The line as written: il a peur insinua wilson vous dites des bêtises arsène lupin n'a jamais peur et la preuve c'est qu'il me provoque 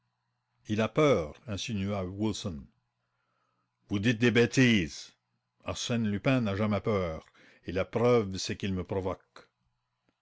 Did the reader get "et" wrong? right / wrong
right